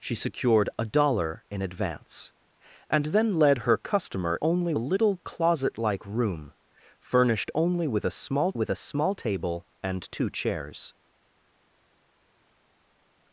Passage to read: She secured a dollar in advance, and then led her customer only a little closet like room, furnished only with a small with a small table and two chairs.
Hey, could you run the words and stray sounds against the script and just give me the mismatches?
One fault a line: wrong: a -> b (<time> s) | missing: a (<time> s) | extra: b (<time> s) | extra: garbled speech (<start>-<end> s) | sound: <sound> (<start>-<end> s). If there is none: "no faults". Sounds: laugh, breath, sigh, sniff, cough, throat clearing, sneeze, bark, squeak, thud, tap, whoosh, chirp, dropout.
no faults